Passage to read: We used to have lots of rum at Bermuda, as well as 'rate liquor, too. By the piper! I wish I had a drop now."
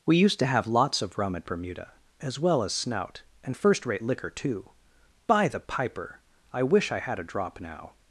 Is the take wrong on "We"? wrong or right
right